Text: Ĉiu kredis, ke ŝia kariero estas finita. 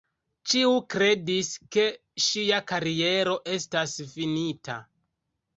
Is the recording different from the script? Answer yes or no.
no